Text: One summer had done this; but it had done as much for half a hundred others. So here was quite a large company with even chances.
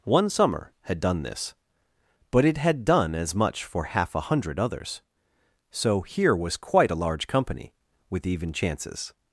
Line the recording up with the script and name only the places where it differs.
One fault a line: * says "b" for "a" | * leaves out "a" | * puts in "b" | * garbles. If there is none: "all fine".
all fine